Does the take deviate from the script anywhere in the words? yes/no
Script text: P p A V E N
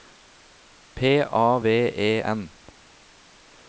yes